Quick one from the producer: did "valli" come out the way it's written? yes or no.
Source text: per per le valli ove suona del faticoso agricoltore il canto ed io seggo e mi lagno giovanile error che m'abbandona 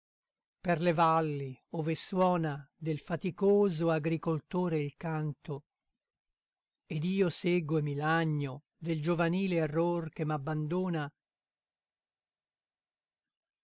yes